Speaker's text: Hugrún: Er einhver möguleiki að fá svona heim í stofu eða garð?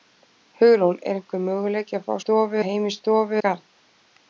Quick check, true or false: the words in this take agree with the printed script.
false